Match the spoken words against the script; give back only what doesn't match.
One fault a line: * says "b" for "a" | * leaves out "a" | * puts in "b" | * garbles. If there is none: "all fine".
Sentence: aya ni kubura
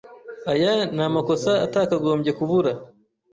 * puts in "amakosa atakagombye"